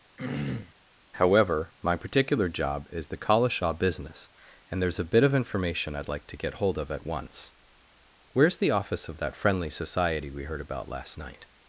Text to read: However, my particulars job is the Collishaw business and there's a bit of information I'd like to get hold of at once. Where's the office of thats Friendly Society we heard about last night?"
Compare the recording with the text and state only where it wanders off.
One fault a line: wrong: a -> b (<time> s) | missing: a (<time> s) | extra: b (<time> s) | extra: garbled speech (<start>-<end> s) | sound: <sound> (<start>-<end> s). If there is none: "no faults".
sound: throat clearing (0.2-0.7 s)
wrong: particulars -> particular (1.9 s)
wrong: thats -> that (9.2 s)